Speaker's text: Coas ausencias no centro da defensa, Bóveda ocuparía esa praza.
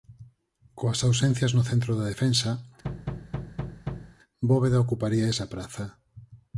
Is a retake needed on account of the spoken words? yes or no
no